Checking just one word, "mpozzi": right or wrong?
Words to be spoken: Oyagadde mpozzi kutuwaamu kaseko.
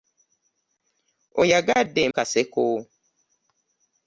wrong